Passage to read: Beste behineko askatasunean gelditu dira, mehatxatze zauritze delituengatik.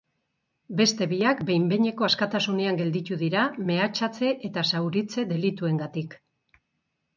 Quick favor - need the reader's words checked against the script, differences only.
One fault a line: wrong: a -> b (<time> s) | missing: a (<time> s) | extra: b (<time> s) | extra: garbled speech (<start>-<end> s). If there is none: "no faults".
extra: biak behin (1.1 s)
extra: eta (4.5 s)